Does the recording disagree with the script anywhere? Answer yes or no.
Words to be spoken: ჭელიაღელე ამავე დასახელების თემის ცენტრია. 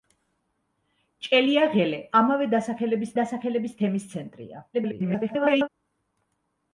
yes